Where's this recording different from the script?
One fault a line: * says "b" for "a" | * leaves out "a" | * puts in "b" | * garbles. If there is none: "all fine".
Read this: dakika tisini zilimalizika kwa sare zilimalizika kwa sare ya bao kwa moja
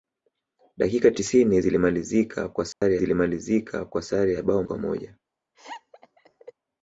all fine